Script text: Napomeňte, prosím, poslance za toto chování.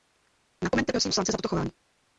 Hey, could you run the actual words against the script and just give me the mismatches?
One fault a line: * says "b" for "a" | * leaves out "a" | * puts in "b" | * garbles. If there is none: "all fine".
all fine